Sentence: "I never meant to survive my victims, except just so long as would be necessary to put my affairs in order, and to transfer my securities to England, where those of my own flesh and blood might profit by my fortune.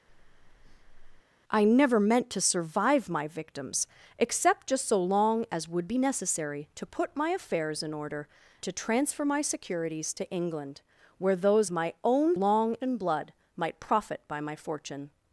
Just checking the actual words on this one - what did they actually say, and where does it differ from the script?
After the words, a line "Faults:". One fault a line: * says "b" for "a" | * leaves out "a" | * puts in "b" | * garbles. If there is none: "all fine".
"I never meant to survive my victims, except just so long as would be necessary to put my affairs in order, to transfer my securities to England, where those my own long and blood might profit by my fortune.
Faults:
* leaves out "and"
* leaves out "of"
* says "long" for "flesh"